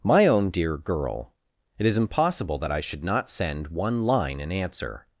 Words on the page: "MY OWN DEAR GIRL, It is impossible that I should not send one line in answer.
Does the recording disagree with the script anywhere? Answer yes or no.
no